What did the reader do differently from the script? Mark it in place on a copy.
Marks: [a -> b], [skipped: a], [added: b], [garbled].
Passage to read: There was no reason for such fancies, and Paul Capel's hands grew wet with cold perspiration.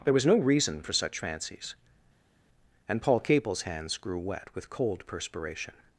There was no reason for such fancies, and Paul Capel's hands grew wet with cold perspiration.